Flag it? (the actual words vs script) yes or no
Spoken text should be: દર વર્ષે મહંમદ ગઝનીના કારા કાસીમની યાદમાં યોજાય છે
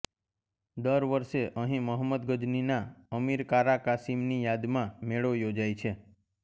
yes